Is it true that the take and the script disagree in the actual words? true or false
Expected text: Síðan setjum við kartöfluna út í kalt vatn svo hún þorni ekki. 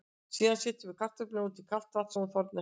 false